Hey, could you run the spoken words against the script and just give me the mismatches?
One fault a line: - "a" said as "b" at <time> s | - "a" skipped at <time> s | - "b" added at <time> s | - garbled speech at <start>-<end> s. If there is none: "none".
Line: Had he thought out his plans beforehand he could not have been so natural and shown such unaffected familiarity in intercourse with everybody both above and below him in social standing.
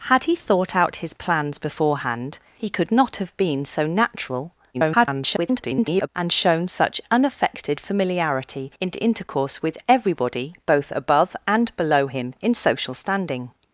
- garbled speech at 4.7-6.1 s